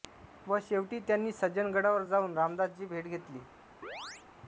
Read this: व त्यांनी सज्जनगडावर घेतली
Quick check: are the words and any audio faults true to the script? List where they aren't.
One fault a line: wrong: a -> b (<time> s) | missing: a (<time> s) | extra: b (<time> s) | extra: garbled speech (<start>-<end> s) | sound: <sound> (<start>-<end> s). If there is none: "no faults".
extra: शेवटी (0.6 s)
extra: जाऊन रामदासांची भेट (2.0 s)
sound: chirp (3.8-4.3 s)